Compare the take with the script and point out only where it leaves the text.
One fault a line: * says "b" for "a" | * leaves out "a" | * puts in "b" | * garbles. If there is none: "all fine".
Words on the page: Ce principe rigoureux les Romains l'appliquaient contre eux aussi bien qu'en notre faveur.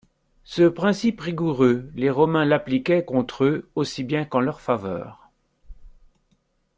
* says "leur" for "notre"